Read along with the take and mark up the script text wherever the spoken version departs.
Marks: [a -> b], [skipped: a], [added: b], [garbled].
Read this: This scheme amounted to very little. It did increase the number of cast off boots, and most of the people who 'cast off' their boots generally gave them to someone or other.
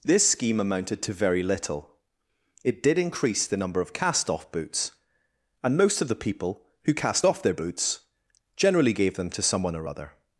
This scheme amounted to very little. It did increase the number of cast off boots, and most of the people who 'cast off' their boots generally gave them to someone or other.